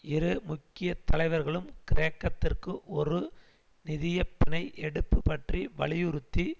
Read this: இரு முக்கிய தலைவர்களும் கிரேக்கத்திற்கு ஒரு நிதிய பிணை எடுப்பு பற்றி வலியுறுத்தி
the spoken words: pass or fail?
pass